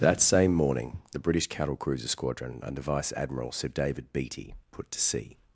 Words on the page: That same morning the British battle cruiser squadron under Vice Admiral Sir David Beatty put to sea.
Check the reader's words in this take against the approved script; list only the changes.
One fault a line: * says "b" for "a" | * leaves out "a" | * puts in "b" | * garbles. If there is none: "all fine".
* says "cattle" for "battle"